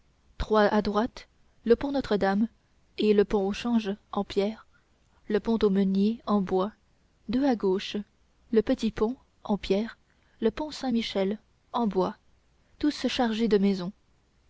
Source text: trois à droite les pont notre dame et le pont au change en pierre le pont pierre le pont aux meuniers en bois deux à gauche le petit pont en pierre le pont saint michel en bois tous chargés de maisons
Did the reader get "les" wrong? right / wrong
wrong